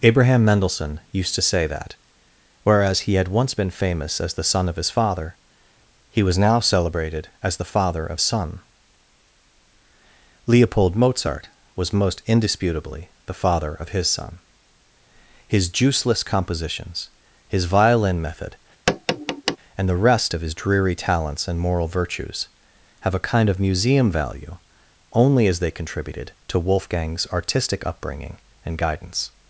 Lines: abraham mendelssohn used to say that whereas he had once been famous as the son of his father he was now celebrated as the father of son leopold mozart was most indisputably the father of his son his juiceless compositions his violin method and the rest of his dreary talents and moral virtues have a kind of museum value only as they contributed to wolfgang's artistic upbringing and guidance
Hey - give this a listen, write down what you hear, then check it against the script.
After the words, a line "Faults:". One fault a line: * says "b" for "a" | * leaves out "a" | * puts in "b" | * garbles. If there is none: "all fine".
abraham mendelssohn used to say that whereas he had once been famous as the son of his father he was now celebrated as the father of son leopold mozart was most indisputably the father of his son his juiceless compositions his violin method and the rest of his dreary talents and moral virtues have a kind of museum value only as they contributed to wolfgang's artistic upbringing and guidance
Faults:
all fine